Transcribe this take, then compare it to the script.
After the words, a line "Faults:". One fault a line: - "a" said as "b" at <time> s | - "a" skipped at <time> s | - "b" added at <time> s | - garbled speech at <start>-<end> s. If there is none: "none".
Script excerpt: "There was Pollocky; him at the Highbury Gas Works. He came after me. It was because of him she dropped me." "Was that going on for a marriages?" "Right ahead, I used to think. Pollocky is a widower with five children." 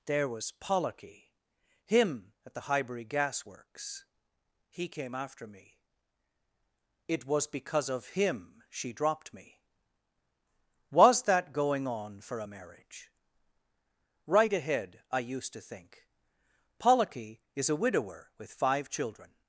"There was Pollocky; him at the Highbury Gas Works. He came after me. It was because of him she dropped me." "Was that going on for a marriage?" "Right ahead, I used to think. Pollocky is a widower with five children."
Faults:
- "marriages" said as "marriage" at 12.4 s